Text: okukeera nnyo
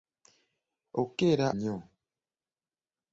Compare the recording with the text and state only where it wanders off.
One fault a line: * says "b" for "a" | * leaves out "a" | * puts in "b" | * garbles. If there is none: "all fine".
all fine